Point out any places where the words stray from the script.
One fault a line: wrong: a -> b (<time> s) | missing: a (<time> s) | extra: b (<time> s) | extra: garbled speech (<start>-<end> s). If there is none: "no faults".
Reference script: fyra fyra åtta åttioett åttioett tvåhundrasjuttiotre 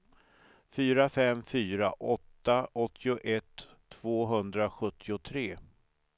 extra: fem (1.1 s)
missing: åttioett (3.7 s)